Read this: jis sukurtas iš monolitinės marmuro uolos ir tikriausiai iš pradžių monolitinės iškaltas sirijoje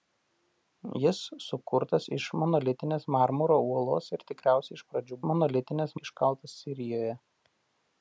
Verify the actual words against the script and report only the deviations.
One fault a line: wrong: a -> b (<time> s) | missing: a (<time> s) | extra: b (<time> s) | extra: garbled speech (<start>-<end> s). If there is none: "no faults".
no faults